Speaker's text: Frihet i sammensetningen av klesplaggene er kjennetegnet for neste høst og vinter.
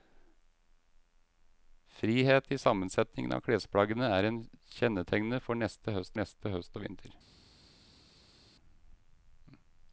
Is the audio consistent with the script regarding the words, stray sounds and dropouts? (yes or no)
no